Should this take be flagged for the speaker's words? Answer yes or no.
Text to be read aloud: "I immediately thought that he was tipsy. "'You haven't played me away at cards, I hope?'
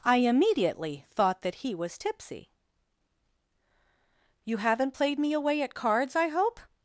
no